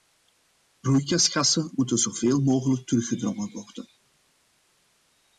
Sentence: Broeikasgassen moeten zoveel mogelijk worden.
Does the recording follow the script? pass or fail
fail